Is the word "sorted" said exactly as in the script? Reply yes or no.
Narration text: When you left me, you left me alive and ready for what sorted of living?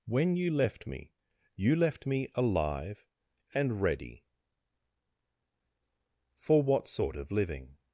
no